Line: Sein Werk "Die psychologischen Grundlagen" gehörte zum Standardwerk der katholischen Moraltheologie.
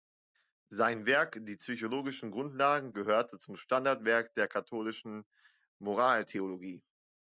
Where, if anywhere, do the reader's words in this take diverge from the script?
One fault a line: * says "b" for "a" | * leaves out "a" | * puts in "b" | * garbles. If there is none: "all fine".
all fine